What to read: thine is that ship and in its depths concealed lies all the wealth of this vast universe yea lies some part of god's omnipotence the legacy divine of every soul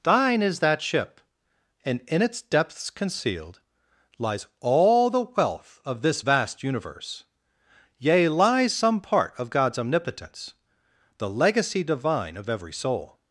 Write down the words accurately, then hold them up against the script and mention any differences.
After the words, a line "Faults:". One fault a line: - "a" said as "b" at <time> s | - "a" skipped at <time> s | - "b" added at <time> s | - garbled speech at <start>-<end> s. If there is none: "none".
thine is that ship and in its depths concealed lies all the wealth of this vast universe yea lies some part of god's omnipotence the legacy divine of every soul
Faults:
none